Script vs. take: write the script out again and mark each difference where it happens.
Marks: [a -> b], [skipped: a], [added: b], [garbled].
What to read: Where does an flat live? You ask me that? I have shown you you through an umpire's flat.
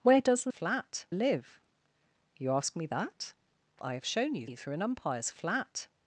Where does an flat live? You ask me that? I have shown you you through an umpire's flat.